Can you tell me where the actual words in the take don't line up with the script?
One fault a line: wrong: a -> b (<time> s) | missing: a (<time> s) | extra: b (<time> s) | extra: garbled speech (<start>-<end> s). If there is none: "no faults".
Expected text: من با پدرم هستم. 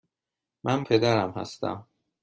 missing: با (0.8 s)